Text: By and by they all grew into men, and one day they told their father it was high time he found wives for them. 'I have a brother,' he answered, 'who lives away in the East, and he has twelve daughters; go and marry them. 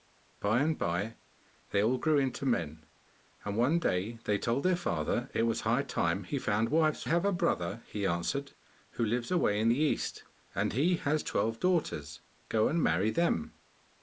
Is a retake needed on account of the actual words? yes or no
yes